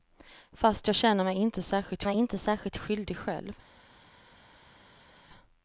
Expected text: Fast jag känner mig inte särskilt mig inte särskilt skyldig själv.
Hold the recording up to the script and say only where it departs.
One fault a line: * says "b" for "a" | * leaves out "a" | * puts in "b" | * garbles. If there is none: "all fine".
all fine